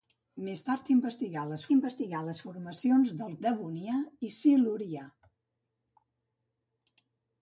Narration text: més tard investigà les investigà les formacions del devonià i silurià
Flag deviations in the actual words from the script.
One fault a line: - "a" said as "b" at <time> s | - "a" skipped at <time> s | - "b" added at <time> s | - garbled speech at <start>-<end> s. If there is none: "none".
none